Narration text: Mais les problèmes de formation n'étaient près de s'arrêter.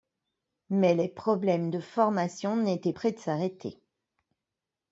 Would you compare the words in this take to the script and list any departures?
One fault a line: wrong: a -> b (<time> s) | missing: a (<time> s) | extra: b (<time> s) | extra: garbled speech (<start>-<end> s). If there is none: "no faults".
no faults